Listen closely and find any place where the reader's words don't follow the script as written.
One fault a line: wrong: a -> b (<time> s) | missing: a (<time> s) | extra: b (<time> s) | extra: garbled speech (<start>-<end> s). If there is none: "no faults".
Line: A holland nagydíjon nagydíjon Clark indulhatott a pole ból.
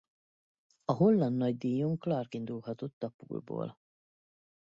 missing: nagydíjon (2.0 s)